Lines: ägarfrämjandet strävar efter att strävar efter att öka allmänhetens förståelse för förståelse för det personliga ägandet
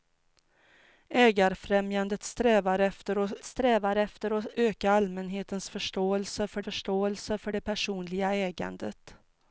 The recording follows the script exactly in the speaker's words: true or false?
true